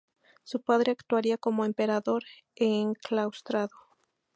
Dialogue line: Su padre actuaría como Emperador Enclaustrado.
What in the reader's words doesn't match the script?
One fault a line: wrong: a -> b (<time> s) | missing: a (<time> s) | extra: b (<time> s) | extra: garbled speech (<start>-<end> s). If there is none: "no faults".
no faults